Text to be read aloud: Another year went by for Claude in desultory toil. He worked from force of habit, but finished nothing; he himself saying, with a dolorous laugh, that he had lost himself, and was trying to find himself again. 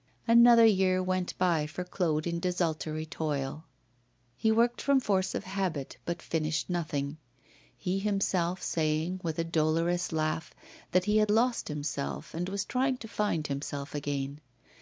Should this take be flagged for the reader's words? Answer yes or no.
no